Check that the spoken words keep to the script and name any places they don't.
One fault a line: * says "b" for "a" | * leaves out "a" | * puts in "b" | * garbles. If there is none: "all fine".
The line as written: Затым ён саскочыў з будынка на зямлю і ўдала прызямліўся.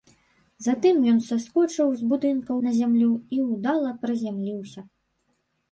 all fine